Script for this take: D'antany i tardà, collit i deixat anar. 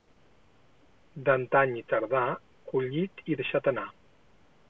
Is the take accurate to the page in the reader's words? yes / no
yes